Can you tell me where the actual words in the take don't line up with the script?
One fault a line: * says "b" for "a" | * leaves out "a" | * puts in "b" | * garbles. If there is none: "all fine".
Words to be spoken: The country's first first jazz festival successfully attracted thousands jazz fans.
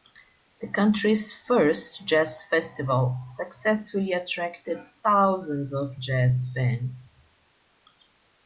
* leaves out "first"
* puts in "of"